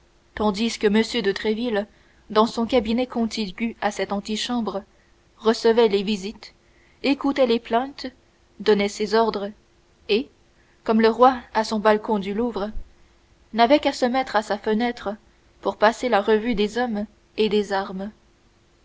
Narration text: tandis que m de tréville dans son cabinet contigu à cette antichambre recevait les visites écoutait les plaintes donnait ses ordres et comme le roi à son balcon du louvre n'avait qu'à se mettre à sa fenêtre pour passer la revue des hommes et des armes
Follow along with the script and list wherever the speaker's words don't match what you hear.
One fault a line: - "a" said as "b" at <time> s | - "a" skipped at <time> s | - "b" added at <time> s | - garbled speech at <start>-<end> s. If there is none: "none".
none